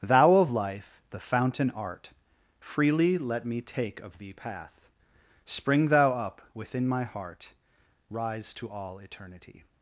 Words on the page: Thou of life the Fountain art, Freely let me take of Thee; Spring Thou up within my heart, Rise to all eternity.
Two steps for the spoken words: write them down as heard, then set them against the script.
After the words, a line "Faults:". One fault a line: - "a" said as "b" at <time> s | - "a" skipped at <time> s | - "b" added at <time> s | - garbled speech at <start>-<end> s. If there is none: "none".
Thou of life the Fountain art, Freely let me take of Thee; path Spring Thou up within my heart, Rise to all eternity.
Faults:
- "path" added at 4.3 s